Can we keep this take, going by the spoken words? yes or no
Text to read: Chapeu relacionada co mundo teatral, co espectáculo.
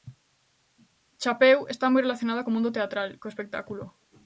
no